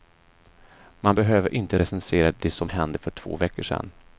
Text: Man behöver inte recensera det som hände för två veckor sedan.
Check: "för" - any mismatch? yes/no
no